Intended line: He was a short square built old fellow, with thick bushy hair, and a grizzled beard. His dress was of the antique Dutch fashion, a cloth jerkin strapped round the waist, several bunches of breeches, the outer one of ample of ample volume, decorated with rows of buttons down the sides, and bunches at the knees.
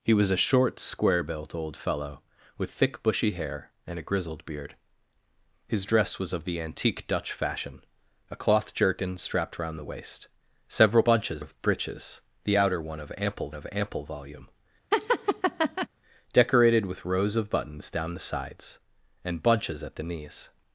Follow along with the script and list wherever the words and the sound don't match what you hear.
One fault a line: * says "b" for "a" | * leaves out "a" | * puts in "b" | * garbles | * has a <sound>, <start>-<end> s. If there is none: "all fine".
* has a laugh, 14.9-15.9 s